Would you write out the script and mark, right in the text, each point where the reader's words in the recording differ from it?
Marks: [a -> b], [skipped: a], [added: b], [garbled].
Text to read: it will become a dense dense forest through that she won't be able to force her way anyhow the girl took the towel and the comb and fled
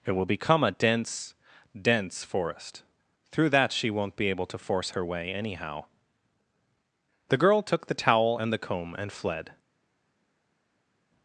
it will become a dense dense forest through that she won't be able to force her way anyhow the girl took the towel and the comb and fled